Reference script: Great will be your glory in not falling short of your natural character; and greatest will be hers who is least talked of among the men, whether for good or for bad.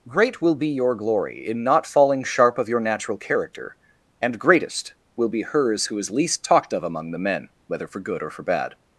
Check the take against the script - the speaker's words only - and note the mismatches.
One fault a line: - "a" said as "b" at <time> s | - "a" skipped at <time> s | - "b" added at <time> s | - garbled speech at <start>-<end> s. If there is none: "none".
- "short" said as "sharp" at 2.2 s